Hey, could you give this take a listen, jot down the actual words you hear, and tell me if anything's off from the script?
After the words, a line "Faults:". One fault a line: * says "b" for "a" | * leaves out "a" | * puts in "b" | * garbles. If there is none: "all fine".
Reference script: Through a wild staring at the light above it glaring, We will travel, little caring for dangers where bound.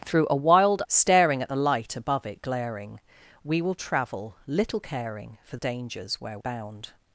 Through a wild staring at the light above it glaring, We will travel, little caring for dangers where bound.
Faults:
all fine